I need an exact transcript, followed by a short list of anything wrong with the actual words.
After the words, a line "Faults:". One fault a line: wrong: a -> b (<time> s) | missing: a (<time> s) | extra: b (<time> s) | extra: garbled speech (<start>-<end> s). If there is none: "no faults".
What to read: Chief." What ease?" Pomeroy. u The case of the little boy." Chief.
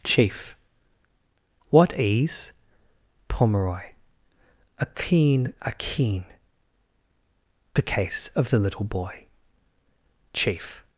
Chief." What ease?" Pomeroy. a keen a keen The case of the little boy." Chief.
Faults:
wrong: u -> a keen a keen (4.8 s)